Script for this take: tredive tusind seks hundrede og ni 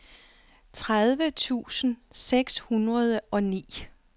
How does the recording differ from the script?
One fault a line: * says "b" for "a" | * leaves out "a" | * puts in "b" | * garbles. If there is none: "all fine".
all fine